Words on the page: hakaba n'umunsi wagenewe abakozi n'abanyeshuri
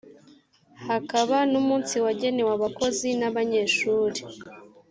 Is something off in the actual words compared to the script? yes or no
no